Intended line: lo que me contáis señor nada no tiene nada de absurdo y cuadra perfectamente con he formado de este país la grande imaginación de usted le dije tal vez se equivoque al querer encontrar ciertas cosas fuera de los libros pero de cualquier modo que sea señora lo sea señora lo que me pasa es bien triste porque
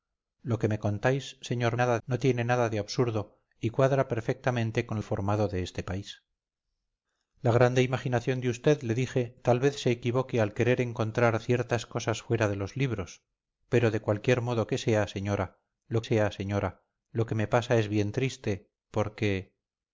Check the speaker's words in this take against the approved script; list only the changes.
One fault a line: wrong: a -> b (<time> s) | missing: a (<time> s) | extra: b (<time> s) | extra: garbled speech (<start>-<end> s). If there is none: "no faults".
no faults